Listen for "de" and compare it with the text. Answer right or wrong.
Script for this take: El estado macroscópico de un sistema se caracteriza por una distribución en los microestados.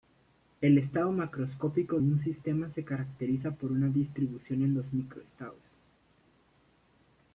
wrong